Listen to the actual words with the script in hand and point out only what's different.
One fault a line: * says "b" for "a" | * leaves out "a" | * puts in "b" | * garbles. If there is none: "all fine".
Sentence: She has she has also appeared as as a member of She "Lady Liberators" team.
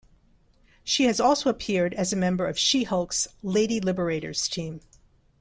* leaves out "she has"
* leaves out "as"
* puts in "Hulk's"